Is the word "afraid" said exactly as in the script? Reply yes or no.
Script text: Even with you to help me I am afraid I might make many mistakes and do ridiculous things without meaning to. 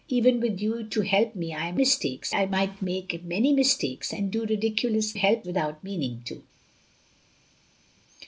no